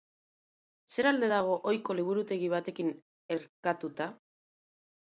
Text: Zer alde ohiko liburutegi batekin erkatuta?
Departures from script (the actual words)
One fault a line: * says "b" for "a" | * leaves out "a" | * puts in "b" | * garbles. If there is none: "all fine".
* puts in "dago"